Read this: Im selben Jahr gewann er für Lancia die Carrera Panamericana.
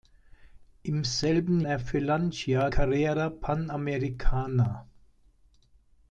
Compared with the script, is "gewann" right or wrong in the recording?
wrong